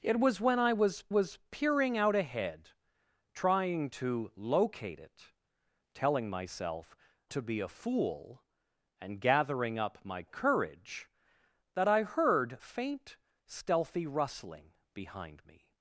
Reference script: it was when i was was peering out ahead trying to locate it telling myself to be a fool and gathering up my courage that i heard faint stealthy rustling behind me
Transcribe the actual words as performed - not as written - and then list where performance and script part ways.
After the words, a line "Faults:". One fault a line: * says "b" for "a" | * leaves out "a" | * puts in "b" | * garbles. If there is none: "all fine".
it was when i was was peering out ahead trying to locate it telling myself to be a fool and gathering up my courage that i heard faint stealthy rustling behind me
Faults:
all fine